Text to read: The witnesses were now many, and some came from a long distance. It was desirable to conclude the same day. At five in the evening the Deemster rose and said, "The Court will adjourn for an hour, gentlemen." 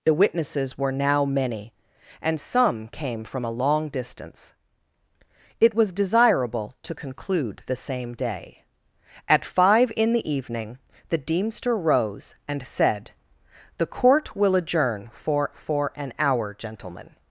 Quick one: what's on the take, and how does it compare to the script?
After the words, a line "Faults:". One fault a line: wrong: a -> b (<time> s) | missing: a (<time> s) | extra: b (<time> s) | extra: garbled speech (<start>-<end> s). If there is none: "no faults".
The witnesses were now many, and some came from a long distance. It was desirable to conclude the same day. At five in the evening the Deemster rose and said, "The Court will adjourn for for an hour, gentlemen."
Faults:
extra: for (15.5 s)